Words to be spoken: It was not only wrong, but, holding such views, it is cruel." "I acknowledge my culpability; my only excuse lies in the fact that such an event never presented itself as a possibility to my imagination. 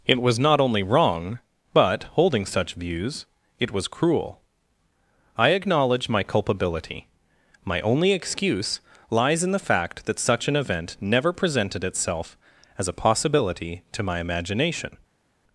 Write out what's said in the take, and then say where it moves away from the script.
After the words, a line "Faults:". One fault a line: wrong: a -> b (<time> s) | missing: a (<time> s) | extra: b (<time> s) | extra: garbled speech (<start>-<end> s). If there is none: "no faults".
It was not only wrong, but, holding such views, it was cruel." "I acknowledge my culpability; my only excuse lies in the fact that such an event never presented itself as a possibility to my imagination.
Faults:
wrong: is -> was (3.7 s)